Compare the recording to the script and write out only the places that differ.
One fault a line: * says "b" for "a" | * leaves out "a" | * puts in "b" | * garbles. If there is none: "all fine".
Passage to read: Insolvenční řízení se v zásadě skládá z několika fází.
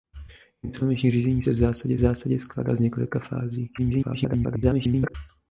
* puts in "zásadě"
* garbles